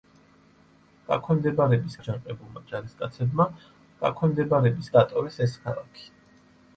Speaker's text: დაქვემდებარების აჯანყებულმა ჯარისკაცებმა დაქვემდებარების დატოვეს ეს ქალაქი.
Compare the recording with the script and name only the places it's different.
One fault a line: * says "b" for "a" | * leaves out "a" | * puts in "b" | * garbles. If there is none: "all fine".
all fine